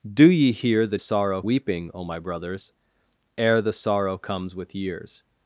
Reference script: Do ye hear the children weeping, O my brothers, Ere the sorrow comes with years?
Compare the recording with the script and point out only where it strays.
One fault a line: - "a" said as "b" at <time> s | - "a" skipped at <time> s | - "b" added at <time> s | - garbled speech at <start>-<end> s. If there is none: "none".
- "children" said as "sorrow" at 1.0 s